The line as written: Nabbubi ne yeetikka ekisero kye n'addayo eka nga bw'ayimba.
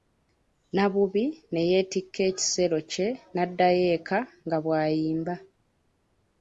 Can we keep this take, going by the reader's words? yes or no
yes